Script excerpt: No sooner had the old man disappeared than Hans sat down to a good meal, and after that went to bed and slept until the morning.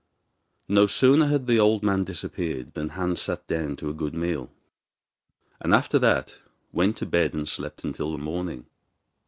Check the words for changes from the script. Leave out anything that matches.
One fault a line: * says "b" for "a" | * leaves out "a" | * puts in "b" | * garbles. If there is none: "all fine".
all fine